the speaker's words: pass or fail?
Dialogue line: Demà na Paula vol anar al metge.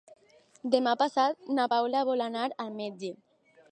fail